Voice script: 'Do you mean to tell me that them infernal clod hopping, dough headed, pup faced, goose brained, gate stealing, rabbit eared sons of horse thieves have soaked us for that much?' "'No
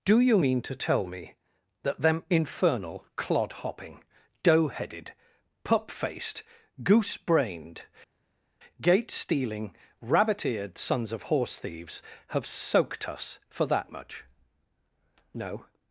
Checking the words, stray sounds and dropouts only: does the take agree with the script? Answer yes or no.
yes